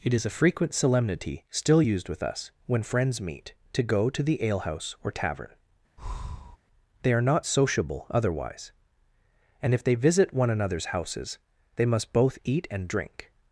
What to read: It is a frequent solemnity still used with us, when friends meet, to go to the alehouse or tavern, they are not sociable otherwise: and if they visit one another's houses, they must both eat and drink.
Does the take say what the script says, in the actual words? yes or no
yes